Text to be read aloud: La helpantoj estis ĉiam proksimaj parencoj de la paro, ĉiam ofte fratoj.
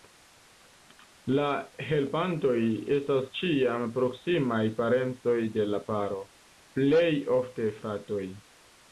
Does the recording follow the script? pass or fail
fail